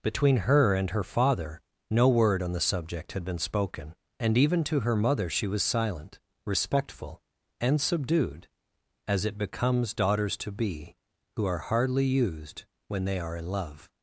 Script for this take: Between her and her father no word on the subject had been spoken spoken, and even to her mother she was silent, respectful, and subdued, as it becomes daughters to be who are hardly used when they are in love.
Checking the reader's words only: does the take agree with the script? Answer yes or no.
no